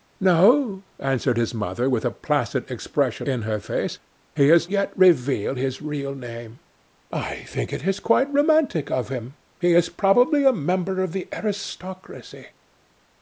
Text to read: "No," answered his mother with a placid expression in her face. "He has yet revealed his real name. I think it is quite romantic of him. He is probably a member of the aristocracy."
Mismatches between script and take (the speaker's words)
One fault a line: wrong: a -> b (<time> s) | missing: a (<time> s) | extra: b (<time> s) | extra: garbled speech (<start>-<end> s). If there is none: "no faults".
no faults